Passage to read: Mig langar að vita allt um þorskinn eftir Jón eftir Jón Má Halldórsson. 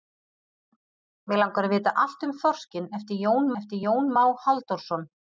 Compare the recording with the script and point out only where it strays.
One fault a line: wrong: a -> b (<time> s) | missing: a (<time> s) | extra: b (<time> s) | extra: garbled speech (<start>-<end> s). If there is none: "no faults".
no faults